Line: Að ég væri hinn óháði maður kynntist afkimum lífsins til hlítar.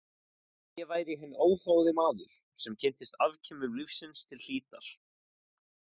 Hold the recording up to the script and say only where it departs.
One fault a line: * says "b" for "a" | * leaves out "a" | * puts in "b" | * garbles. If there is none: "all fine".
* puts in "sem"